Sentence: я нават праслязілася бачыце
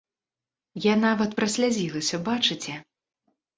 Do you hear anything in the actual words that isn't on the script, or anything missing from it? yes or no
no